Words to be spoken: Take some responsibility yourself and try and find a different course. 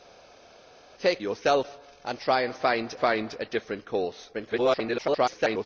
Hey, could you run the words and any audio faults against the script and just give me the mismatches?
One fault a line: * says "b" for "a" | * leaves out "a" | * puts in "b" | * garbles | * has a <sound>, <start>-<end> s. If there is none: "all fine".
* leaves out "some responsibility"
* puts in "find"
* garbles